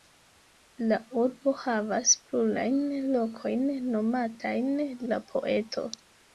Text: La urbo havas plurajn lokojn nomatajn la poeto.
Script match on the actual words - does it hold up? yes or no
yes